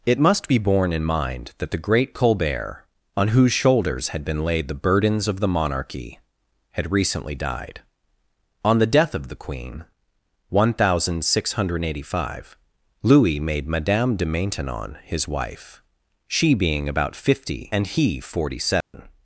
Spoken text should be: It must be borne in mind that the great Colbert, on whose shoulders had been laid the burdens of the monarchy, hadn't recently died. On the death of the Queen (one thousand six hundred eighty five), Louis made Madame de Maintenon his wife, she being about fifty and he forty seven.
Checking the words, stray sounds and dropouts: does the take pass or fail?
fail